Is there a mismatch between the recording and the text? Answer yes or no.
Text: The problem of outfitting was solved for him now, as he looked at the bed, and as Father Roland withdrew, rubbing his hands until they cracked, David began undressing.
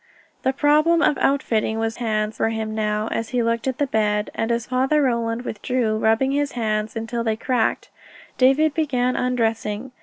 yes